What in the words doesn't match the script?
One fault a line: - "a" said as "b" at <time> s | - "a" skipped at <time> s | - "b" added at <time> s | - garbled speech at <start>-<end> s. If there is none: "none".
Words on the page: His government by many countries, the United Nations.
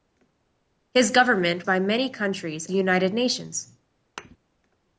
none